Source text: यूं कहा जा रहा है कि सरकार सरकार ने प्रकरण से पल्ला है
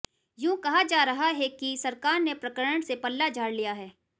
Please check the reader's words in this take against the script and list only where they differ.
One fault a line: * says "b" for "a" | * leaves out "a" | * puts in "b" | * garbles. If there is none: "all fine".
* leaves out "सरकार"
* puts in "झाड़ लिया"